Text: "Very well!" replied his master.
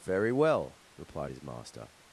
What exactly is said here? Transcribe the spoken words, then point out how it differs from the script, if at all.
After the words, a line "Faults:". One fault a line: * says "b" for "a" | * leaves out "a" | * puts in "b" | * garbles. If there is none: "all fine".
"Very well!" replied his master.
Faults:
all fine